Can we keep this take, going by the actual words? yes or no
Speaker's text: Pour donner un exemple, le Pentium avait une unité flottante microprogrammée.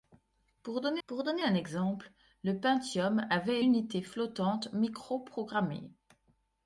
no